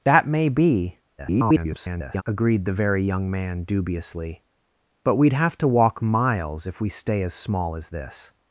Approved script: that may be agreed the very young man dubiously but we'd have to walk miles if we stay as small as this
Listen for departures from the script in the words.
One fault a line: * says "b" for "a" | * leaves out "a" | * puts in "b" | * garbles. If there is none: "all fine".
* garbles